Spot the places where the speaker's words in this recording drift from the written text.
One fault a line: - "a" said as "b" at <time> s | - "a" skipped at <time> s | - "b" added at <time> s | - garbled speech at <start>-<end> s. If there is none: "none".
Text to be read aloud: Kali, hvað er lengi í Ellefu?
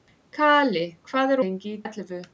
none